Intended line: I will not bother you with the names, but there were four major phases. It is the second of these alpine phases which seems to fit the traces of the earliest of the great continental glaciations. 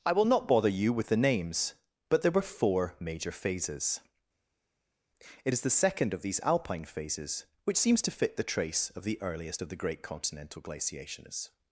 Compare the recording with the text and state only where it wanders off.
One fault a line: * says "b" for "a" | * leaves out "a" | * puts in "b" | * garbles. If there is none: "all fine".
* says "trace" for "traces"